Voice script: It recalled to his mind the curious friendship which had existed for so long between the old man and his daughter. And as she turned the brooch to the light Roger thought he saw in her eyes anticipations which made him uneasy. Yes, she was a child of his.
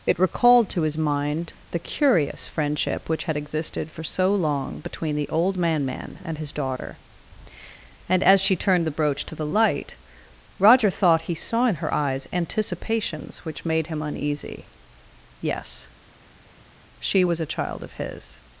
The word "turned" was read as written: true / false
true